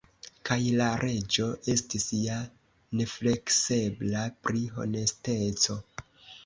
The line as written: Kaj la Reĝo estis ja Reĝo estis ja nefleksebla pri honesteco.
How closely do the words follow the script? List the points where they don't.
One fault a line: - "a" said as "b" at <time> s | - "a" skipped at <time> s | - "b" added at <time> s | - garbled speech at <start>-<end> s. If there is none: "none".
- "Reĝo estis ja" skipped at 2.4 s